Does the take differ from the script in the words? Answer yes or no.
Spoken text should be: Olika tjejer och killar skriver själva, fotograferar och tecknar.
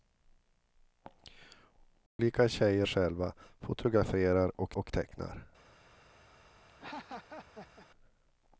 yes